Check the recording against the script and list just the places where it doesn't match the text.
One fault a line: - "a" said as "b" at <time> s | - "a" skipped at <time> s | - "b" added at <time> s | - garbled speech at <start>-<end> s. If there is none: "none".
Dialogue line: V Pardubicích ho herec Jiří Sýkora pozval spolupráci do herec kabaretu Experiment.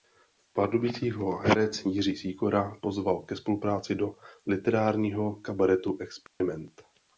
- "ke" added at 3.2 s
- "herec" said as "literárního" at 4.5 s